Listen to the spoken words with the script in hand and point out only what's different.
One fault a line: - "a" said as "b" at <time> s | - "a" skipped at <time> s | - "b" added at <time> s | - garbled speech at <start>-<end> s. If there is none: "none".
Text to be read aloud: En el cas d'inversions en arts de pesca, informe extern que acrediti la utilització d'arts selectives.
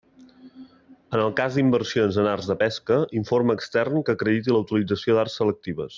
none